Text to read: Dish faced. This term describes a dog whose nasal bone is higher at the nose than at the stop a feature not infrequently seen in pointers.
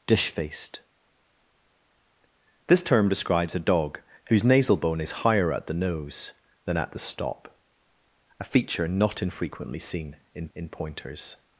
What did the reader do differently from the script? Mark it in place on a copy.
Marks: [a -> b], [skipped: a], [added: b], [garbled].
Dish faced. This term describes a dog whose nasal bone is higher at the nose than at the stop a feature not infrequently seen in [added: in] pointers.